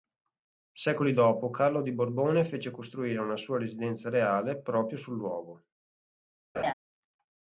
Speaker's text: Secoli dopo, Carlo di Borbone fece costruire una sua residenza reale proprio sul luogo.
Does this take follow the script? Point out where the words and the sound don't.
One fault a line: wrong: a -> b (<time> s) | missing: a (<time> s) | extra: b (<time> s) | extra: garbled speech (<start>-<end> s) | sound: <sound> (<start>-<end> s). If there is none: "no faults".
sound: laugh (6.5-6.7 s)